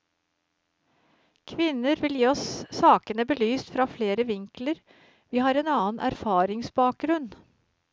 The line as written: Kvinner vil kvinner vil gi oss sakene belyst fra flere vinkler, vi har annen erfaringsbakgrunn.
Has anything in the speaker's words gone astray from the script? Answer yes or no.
yes